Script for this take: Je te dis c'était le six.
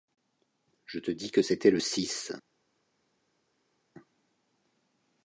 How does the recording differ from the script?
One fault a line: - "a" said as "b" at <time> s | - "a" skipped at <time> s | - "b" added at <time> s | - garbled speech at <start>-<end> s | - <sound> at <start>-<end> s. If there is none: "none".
- "que" added at 1.3 s